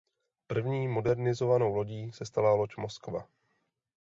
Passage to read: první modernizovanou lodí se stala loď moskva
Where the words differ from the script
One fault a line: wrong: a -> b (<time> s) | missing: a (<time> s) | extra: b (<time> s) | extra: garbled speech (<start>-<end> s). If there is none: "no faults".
no faults